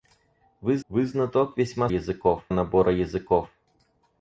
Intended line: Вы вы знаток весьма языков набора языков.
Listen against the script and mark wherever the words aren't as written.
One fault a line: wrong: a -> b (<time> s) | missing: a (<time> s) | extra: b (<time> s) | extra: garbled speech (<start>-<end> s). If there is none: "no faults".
no faults